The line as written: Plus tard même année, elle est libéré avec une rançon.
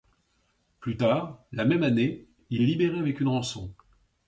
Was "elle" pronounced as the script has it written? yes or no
no